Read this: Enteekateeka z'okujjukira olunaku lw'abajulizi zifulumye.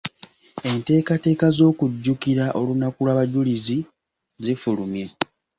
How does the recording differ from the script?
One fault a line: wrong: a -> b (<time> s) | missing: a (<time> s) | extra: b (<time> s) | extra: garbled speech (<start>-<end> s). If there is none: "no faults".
no faults